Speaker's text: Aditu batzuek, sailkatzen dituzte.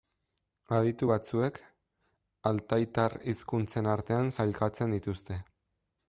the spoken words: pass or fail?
fail